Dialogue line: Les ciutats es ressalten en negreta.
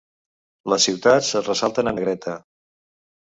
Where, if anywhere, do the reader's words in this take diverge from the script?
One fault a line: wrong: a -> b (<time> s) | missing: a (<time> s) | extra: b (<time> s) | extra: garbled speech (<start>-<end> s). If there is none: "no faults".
no faults